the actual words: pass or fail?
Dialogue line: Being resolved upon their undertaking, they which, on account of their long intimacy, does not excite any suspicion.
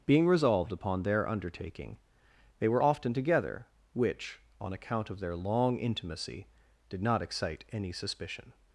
fail